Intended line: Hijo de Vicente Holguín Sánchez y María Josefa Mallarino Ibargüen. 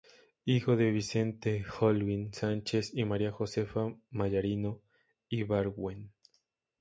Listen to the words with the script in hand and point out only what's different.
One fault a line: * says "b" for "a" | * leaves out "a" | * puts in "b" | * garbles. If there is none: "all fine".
all fine